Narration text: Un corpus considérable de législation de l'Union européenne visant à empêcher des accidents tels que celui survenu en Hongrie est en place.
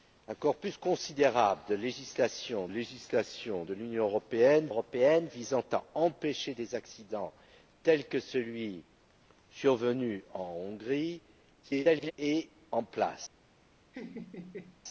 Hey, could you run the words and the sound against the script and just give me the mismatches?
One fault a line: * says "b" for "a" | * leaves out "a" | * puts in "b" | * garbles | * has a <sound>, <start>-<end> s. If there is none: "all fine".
* puts in "législation"
* puts in "européenne"
* garbles
* has a laugh, 13.9-14.8 s